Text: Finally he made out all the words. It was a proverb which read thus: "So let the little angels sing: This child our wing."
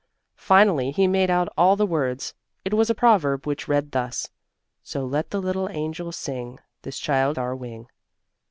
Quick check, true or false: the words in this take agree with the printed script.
true